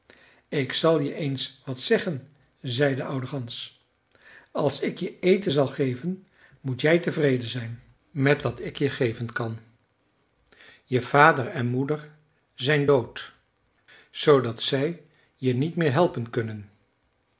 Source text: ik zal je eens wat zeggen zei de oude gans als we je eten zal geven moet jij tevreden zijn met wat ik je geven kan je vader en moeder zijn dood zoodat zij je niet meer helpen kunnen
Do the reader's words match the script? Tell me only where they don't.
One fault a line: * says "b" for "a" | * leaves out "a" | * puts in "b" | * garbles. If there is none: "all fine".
* says "ik" for "we"